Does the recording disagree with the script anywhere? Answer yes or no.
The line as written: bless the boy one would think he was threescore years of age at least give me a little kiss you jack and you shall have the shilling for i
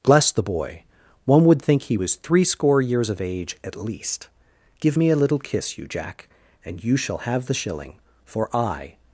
no